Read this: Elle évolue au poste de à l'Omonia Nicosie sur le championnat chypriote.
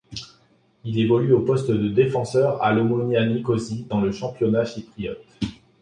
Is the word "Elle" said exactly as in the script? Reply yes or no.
no